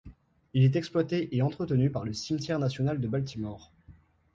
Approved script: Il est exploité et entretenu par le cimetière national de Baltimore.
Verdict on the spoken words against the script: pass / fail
pass